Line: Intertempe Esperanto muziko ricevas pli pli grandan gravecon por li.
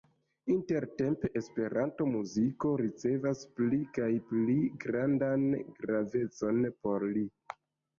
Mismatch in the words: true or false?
true